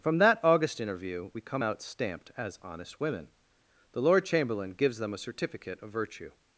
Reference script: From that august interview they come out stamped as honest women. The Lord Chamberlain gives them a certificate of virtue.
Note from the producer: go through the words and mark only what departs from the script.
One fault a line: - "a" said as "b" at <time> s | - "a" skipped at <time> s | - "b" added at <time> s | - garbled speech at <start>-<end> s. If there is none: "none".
- "they" said as "we" at 1.3 s